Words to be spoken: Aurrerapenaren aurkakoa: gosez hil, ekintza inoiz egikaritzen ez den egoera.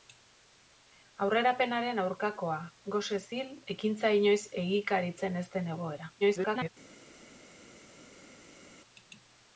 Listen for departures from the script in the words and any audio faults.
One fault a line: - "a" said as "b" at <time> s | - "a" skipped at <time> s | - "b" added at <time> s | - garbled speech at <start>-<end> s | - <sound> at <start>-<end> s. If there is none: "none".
- garbled speech at 6.2-6.7 s